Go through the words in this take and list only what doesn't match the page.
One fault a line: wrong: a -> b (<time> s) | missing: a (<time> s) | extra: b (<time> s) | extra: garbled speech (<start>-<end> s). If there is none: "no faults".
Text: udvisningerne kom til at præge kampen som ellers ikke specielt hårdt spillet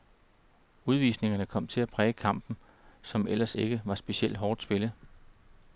extra: var (3.8 s)